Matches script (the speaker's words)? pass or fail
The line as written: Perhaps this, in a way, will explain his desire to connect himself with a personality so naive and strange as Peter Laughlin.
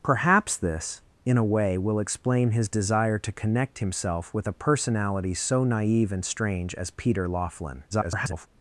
fail